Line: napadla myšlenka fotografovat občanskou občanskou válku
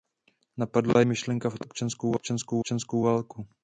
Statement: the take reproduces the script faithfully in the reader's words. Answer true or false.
true